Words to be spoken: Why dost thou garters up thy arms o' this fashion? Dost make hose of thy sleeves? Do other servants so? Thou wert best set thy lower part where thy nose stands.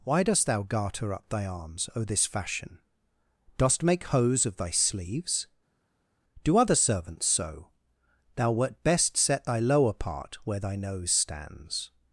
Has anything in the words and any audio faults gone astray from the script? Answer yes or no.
yes